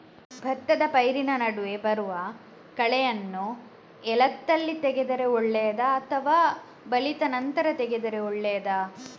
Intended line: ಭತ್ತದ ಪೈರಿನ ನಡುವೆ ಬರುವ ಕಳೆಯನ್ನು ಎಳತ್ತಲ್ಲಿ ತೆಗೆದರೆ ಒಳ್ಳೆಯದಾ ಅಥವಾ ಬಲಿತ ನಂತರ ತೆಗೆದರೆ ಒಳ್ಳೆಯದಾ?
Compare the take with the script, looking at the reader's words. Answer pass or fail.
pass